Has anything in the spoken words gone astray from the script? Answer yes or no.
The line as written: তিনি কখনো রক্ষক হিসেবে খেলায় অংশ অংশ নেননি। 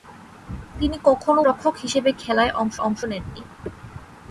no